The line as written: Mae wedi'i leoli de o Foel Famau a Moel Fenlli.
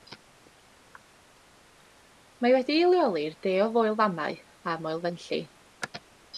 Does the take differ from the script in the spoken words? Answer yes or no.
yes